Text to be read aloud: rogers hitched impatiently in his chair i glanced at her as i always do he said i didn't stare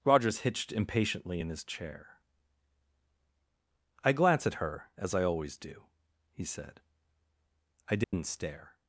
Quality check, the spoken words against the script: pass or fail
fail